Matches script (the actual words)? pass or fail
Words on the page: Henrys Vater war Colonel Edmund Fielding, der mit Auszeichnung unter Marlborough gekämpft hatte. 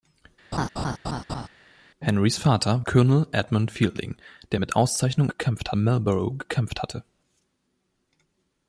fail